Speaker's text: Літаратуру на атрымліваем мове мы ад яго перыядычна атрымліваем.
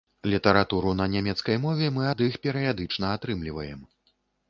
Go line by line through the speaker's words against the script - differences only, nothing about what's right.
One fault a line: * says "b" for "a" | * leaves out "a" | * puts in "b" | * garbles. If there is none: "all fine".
* says "нямецкай" for "атрымліваем"
* says "іх" for "яго"